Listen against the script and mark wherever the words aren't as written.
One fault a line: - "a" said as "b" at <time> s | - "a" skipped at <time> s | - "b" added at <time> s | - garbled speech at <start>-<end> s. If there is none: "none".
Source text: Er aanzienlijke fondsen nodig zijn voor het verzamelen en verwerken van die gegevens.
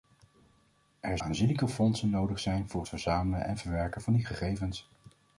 none